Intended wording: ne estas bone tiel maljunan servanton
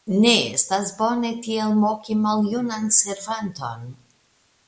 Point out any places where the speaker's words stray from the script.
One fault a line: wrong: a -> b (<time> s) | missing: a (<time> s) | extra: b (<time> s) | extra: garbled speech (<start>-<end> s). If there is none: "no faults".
extra: moki (1.8 s)